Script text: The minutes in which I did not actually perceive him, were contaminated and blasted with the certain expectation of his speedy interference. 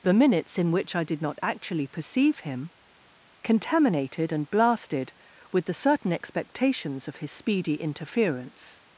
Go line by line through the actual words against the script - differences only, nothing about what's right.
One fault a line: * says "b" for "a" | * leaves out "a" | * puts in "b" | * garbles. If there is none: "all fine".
* leaves out "were"
* says "expectations" for "expectation"